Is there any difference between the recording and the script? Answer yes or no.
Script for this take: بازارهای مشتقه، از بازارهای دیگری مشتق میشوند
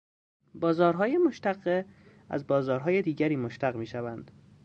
no